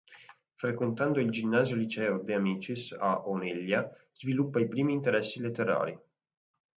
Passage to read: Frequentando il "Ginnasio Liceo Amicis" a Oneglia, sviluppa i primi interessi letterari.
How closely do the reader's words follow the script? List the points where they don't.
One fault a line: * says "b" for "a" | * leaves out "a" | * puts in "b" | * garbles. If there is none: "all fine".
* puts in "De"